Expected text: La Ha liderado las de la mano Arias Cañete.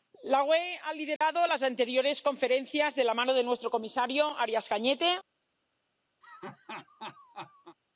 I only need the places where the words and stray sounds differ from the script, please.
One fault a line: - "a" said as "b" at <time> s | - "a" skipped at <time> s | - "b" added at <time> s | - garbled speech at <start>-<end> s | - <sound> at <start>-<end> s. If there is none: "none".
- "UE" added at 0.4 s
- dropout at 1.2-1.2 s
- "anteriores conferencias" added at 1.6 s
- "de nuestro comisario" added at 3.3 s
- laugh at 6.2-7.8 s